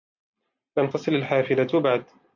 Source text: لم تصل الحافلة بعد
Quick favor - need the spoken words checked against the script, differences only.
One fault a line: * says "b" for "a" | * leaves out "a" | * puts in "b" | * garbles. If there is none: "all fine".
all fine